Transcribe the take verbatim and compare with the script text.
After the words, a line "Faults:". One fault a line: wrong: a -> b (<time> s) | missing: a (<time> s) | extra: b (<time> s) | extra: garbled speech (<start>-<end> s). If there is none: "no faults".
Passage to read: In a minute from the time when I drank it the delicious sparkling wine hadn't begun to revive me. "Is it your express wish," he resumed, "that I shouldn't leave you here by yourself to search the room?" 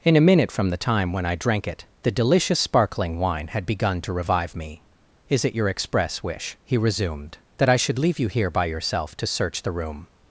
In a minute from the time when I drank it the delicious sparkling wine had begun to revive me. "Is it your express wish," he resumed, "that I should leave you here by yourself to search the room?"
Faults:
wrong: hadn't -> had (3.5 s)
wrong: shouldn't -> should (7.8 s)